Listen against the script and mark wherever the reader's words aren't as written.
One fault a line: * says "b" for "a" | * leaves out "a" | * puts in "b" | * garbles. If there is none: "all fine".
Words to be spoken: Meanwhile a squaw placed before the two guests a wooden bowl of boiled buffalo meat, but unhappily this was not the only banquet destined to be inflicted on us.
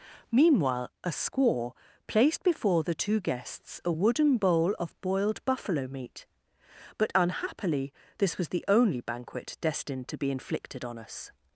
* leaves out "not"